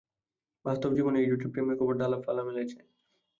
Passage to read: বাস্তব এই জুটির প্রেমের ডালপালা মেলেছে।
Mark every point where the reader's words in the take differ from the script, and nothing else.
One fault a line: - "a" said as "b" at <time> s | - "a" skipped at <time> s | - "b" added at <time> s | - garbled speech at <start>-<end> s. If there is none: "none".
- "জীবনেও" added at 1.0 s
- "খবর" added at 1.8 s